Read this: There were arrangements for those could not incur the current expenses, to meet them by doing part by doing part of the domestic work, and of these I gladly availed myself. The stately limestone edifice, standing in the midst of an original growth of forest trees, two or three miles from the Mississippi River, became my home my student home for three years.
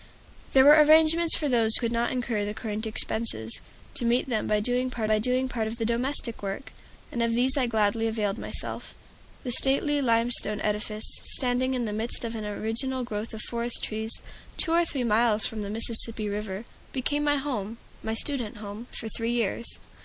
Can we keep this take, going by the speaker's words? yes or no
yes